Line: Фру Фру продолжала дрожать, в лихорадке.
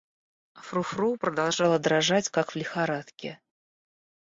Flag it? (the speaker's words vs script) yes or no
yes